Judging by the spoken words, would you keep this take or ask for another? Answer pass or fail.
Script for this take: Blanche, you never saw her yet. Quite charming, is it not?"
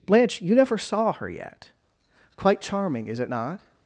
pass